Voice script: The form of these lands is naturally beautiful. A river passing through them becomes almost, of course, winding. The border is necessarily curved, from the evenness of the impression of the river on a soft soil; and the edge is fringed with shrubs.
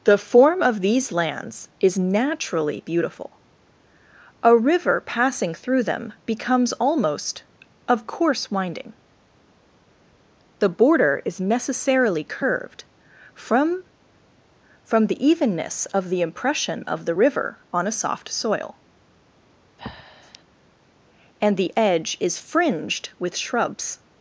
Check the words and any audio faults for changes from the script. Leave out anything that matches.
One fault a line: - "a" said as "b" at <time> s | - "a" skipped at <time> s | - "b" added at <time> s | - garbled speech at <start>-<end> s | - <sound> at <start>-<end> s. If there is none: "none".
- "from" added at 14.8 s
- breath at 19.8-20.4 s